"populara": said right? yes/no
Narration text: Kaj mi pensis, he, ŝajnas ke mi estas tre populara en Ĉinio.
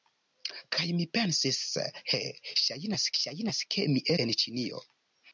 no